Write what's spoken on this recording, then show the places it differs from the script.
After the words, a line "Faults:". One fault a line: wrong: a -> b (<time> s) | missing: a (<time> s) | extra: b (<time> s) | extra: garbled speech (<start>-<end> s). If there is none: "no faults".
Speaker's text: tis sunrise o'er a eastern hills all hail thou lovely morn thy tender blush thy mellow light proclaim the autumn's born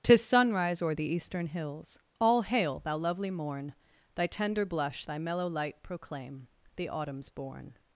tis sunrise o'er the eastern hills all hail thou lovely morn thy tender blush thy mellow light proclaim the autumn's born
Faults:
wrong: a -> the (0.9 s)